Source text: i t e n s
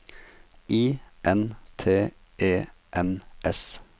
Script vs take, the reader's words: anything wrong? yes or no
yes